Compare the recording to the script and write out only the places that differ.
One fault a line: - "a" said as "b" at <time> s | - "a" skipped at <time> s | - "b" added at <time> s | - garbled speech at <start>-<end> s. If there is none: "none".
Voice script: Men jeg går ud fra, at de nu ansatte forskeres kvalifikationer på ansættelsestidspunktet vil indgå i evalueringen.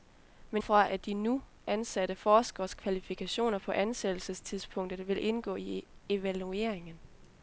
- "jeg går ud" skipped at 0.6 s